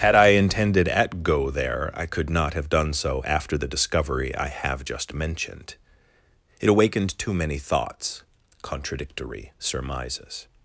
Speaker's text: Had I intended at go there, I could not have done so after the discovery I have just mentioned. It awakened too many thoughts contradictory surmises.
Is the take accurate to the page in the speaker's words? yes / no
yes